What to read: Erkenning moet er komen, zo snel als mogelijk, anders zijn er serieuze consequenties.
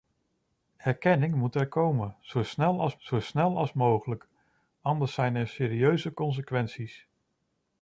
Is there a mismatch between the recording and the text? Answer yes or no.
yes